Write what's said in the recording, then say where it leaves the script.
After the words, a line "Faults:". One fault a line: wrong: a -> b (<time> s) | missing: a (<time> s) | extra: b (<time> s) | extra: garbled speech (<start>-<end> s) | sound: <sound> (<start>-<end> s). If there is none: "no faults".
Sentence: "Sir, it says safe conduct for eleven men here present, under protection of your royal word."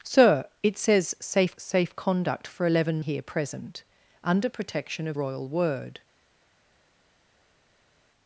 "Sir, it says safe safe conduct for eleven here present, under protection of royal word."
Faults:
extra: safe (1.6 s)
missing: men (3.0 s)
missing: your (5.2 s)